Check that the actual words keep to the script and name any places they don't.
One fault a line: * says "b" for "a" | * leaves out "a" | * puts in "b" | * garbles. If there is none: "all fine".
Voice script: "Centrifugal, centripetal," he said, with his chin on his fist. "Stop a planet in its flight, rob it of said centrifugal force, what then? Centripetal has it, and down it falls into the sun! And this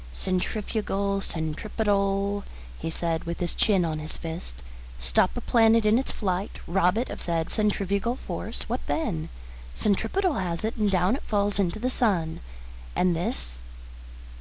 all fine